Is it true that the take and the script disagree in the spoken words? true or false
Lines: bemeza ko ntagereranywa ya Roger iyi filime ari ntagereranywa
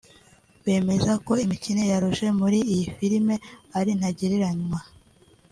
true